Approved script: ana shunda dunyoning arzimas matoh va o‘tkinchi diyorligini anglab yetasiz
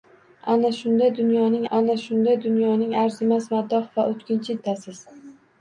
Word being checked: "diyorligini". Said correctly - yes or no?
no